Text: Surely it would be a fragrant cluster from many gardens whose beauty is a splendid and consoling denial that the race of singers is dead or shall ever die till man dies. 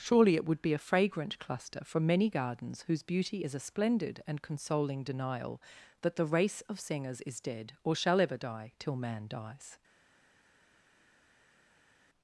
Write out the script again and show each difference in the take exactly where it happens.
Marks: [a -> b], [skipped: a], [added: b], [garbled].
Surely it would be a fragrant cluster from many gardens whose beauty is a splendid and consoling denial that the race of singers is dead or shall ever die till man dies.